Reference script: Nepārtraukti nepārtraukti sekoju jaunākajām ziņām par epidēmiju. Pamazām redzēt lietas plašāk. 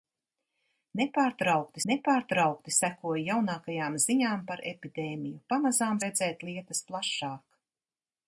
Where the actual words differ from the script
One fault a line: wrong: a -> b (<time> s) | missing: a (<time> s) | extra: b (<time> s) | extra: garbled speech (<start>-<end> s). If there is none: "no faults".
no faults